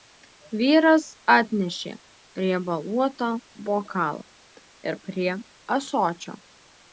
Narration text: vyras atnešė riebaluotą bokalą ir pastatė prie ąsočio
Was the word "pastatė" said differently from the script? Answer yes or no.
yes